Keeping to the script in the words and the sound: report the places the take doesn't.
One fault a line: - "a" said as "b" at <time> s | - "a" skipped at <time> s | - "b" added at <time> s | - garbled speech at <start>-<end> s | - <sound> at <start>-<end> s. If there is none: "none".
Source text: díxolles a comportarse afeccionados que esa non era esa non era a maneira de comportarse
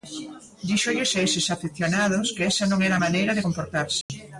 - "comportarse" said as "eses" at 1.2 s
- "esa non era" skipped at 3.0 s
- dropout at 4.0-4.1 s